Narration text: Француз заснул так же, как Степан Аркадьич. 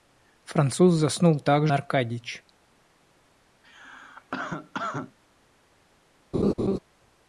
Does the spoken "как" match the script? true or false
false